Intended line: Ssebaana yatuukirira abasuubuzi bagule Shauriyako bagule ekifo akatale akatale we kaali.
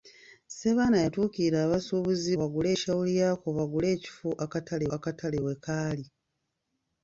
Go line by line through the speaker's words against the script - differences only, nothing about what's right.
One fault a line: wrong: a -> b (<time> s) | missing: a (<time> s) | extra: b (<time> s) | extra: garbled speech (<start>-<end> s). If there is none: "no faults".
no faults